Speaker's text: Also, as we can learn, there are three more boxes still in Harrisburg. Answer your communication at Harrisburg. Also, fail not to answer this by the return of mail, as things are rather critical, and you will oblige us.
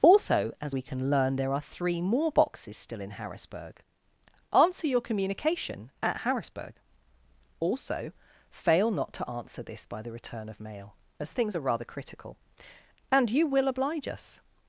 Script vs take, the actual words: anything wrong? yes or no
no